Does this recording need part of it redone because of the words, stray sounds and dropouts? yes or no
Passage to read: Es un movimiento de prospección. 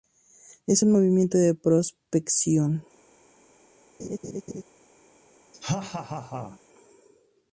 yes